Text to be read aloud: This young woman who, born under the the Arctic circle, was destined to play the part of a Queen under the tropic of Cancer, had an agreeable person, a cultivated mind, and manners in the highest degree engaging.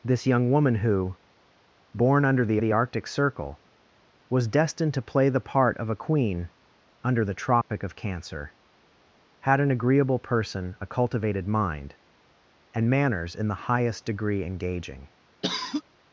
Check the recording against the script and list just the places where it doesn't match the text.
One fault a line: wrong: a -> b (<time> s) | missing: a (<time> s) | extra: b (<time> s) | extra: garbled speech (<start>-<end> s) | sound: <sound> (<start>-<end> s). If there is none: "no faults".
sound: dropout (7.6-7.7 s)
sound: cough (15.4-15.8 s)